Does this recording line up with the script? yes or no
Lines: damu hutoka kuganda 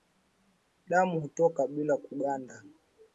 no